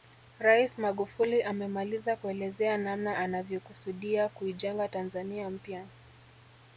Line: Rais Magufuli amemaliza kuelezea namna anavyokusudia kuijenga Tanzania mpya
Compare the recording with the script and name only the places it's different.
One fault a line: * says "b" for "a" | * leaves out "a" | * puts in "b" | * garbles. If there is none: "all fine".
all fine